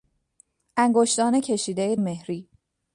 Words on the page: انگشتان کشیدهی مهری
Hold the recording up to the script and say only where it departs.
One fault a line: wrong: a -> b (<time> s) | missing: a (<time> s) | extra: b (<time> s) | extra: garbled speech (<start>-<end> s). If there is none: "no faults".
no faults